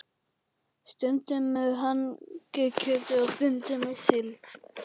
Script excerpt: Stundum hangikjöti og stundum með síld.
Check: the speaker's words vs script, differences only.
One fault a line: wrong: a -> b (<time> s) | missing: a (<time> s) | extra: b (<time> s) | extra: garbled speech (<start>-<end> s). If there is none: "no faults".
extra: með (1.5 s)